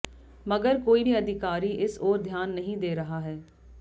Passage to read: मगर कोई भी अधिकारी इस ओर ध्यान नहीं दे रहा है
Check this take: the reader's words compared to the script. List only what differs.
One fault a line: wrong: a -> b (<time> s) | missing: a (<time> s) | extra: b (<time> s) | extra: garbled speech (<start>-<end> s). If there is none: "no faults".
no faults